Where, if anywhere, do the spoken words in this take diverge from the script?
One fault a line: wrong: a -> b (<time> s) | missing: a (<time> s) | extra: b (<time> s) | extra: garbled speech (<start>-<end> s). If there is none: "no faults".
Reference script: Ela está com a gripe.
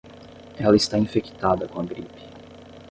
extra: infectada (1.0 s)